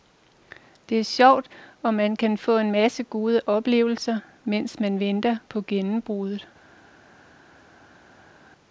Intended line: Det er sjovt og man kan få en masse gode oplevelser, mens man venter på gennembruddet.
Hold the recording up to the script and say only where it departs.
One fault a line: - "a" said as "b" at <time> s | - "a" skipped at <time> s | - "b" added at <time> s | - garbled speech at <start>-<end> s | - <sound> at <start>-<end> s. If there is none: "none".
none